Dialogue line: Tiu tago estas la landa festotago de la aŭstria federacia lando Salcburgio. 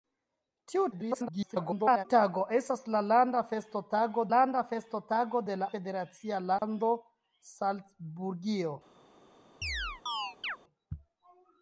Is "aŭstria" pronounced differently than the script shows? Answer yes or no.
yes